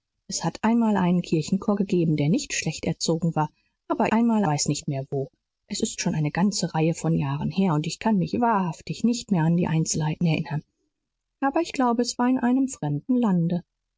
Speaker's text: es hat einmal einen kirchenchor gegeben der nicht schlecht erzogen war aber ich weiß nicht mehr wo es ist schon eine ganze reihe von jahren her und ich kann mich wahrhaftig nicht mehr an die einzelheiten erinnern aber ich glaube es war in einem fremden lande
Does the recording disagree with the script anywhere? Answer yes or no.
yes